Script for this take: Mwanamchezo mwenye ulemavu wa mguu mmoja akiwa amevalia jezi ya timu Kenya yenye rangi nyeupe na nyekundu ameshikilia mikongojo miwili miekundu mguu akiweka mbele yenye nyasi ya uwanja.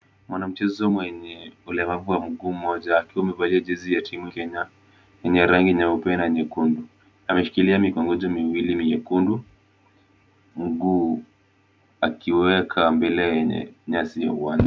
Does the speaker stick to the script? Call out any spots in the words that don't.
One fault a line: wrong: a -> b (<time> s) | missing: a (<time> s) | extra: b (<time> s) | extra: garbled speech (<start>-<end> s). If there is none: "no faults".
no faults